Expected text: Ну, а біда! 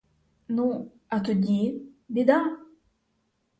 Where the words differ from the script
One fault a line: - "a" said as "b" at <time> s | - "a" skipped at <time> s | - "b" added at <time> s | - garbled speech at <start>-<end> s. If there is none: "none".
- "тоді" added at 1.2 s